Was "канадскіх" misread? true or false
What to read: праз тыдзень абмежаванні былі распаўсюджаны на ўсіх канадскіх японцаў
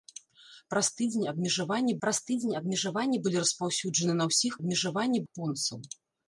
true